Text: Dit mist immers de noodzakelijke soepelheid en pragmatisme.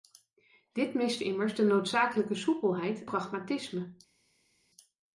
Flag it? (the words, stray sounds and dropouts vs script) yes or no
yes